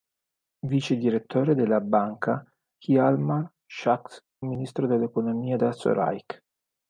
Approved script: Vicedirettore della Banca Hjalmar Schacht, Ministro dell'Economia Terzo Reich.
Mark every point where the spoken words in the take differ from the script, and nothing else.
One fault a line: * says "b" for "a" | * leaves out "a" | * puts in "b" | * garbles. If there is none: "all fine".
all fine